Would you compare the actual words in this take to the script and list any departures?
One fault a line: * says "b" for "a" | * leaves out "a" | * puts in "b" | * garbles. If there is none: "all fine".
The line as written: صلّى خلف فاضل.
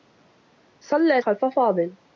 all fine